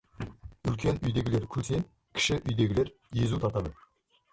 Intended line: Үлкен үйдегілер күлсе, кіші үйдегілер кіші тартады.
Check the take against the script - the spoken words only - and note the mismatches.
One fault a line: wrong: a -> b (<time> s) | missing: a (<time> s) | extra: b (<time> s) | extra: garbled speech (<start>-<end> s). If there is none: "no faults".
wrong: кіші -> езу (3.3 s)